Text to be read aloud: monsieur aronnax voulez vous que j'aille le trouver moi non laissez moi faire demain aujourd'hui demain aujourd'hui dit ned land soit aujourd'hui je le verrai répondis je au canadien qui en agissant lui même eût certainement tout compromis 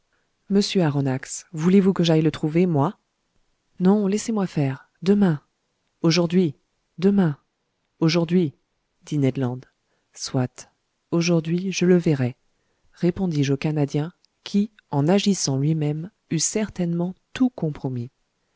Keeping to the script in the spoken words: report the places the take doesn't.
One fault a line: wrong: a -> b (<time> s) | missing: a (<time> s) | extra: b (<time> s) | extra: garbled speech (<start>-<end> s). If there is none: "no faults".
no faults